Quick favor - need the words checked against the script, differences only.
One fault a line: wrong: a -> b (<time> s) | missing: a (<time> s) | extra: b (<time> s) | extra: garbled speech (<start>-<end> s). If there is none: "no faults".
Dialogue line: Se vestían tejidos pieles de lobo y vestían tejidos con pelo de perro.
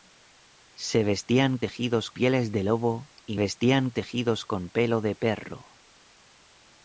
no faults